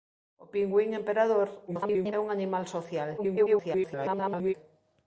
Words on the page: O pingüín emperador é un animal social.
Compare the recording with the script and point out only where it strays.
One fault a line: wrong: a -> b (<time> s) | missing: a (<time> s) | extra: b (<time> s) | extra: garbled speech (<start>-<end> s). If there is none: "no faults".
extra: garbled speech (1.7-2.1 s)
extra: garbled speech (3.2-4.5 s)